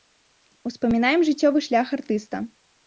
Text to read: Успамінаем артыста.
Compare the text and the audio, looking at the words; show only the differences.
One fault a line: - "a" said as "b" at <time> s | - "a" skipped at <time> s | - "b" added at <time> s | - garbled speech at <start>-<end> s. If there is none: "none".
- "жыццёвы шлях" added at 1.3 s